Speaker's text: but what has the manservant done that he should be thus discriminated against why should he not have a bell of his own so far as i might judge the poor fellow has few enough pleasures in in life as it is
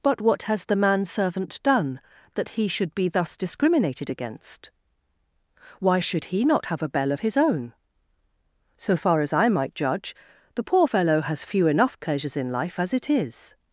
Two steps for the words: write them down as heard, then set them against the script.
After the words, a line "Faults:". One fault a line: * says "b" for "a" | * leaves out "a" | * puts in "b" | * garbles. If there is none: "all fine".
but what has the manservant done that he should be thus discriminated against why should he not have a bell of his own so far as i might judge the poor fellow has few enough pleasures in life as it is
Faults:
* leaves out "in"